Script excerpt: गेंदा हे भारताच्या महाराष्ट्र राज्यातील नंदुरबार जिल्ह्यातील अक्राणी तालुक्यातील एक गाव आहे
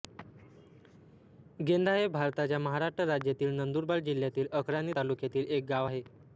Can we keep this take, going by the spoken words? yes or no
yes